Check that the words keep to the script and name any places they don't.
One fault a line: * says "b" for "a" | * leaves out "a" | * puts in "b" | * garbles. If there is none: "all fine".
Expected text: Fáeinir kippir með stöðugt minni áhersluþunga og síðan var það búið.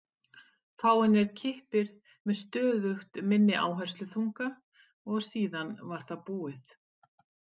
all fine